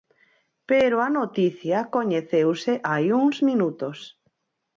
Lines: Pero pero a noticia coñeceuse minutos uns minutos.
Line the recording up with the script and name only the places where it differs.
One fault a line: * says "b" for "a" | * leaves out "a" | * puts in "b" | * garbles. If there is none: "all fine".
* leaves out "pero"
* says "hai" for "minutos"